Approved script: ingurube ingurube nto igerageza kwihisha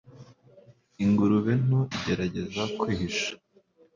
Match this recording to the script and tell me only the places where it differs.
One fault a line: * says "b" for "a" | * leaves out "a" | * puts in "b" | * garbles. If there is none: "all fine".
* leaves out "ingurube"